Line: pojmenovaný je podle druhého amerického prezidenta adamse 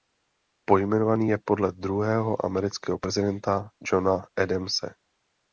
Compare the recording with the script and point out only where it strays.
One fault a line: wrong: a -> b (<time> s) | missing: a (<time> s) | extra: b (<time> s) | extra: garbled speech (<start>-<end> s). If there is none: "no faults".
extra: johna (3.9 s)